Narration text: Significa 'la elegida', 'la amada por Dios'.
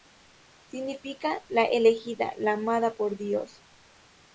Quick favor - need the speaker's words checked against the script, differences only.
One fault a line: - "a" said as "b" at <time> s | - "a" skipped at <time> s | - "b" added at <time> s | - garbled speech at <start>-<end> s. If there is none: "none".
none